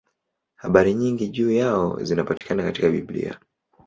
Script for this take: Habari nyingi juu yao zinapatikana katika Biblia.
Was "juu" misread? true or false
false